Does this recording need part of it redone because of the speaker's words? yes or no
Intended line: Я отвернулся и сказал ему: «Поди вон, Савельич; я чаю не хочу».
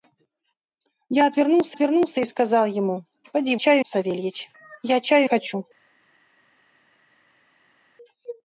yes